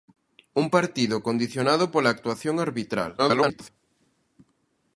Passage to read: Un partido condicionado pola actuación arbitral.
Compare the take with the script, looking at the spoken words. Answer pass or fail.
fail